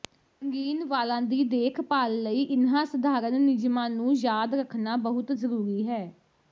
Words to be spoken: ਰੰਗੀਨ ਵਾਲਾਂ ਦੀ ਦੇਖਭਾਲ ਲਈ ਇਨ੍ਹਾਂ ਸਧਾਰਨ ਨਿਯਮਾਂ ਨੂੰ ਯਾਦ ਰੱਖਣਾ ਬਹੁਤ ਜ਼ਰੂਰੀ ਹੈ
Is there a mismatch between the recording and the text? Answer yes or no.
no